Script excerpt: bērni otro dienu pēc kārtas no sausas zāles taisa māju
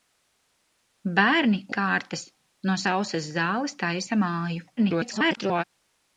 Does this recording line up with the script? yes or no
no